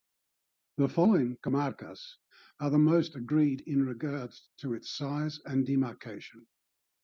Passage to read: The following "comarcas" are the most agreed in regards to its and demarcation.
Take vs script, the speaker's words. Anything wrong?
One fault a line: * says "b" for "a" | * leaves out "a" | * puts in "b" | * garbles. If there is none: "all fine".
* puts in "size"